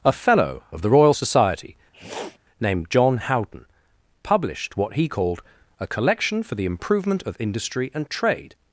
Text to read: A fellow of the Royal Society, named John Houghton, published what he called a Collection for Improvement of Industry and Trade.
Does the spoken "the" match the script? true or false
true